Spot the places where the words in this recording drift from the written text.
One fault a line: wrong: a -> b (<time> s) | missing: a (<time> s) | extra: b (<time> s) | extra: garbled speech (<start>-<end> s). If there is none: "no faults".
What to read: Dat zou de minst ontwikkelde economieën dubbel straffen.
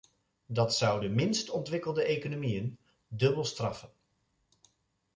no faults